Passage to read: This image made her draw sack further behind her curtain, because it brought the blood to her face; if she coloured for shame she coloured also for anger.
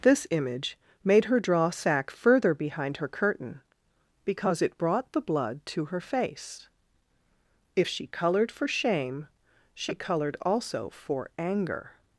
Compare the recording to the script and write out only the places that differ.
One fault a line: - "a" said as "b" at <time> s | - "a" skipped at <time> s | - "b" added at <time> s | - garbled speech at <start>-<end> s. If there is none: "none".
none